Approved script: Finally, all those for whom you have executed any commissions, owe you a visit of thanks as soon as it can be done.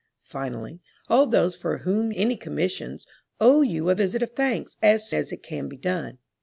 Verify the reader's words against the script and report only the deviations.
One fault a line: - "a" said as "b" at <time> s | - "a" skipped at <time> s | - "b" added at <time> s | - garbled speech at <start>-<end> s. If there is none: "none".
- "you have executed" skipped at 2.1 s
- "soon" skipped at 5.1 s